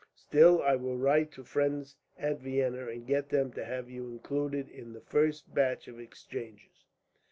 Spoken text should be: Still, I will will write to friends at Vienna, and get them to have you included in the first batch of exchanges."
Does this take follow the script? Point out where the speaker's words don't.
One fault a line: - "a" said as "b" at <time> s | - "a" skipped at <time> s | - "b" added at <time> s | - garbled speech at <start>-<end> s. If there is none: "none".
- "will" skipped at 1.0 s